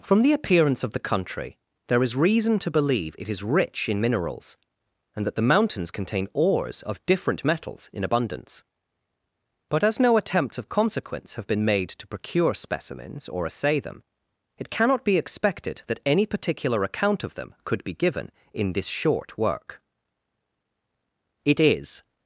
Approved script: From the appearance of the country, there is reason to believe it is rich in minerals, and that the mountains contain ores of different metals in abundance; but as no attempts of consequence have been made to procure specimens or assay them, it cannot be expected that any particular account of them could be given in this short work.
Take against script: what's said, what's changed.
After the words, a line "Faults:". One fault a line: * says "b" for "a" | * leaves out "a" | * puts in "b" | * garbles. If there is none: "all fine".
From the appearance of the country, there is reason to believe it is rich in minerals, and that the mountains contain ores of different metals in abundance; but as no attempts of consequence have been made to procure specimens or assay them, it cannot be expected that any particular account of them could be given in this short work. It is
Faults:
* puts in "It is"